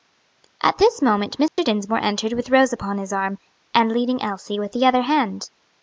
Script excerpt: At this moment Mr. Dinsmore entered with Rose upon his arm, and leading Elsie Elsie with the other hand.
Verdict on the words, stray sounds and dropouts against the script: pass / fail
fail